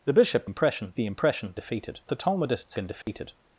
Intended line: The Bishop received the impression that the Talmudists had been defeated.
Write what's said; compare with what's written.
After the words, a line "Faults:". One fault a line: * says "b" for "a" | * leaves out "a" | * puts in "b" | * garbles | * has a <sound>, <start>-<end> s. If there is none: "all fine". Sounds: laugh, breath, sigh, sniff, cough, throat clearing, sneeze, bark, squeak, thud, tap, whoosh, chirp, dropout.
The Bishop impression the impression defeated the Talmudists been defeated.
Faults:
* says "impression" for "received"
* says "defeated" for "that"
* leaves out "had"
* has a dropout, 3.0-3.1 s